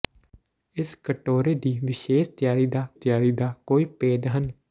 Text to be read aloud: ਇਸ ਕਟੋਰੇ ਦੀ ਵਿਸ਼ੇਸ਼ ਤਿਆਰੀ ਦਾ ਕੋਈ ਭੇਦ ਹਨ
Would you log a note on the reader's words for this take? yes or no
yes